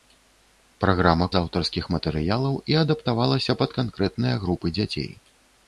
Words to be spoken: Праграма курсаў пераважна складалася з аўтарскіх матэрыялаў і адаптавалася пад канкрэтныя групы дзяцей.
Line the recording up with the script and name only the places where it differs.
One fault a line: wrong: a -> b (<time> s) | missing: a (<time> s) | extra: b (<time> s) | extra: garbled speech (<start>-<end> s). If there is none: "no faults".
missing: курсаў пераважна складалася (1.2 s)